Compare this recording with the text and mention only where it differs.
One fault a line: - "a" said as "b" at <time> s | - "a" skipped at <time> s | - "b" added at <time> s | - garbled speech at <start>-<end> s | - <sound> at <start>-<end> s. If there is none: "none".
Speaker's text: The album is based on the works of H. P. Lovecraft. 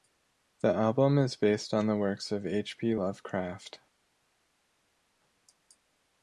none